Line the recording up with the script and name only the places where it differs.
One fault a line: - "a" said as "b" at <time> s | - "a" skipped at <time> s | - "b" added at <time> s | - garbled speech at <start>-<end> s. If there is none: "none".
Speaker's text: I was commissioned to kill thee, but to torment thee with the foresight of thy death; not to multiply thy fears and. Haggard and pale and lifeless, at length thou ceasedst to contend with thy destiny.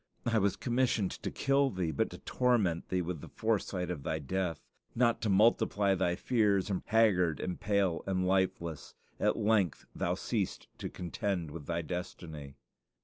none